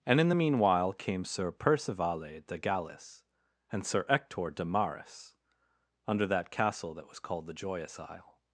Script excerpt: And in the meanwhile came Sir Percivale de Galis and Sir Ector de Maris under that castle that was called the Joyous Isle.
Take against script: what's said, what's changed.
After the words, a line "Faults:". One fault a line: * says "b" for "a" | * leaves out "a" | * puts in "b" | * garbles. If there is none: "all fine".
And in the meanwhile came Sir Percivale de Galis and Sir Ector de Maris under that castle that was called the Joyous Isle.
Faults:
all fine